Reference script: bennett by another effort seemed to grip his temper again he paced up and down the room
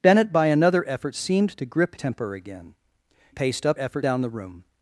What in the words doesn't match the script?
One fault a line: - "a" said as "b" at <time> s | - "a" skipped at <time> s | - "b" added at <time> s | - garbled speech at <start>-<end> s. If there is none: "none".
- "his" skipped at 2.0 s
- "he" skipped at 2.7 s
- "and" said as "effort" at 3.8 s